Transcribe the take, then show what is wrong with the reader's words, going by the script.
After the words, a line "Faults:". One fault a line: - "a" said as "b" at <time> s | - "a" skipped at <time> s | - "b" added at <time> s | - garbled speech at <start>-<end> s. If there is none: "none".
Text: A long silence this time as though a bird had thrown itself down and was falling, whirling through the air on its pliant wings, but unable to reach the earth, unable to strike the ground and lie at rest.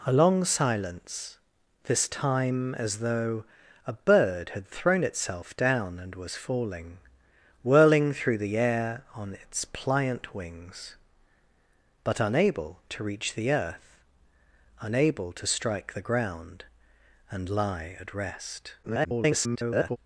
A long silence this time as though a bird had thrown itself down and was falling, whirling through the air on its pliant wings, but unable to reach the earth, unable to strike the ground and lie at rest. [garbled]
Faults:
- garbled speech at 18.8-20.0 s